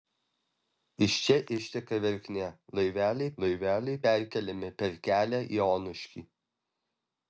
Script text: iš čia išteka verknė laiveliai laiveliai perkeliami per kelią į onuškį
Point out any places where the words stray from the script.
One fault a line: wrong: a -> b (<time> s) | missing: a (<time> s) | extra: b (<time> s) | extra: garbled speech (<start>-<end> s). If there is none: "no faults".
no faults